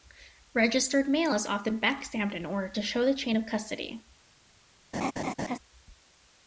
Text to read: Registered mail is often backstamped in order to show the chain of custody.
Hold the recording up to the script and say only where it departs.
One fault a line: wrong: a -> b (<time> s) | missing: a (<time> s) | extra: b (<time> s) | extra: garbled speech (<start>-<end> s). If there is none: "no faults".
no faults